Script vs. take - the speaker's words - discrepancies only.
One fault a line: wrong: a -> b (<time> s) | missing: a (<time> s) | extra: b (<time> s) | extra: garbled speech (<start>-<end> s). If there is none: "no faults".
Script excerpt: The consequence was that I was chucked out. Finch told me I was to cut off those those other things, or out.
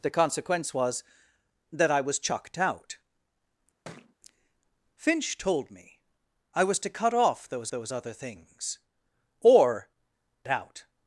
no faults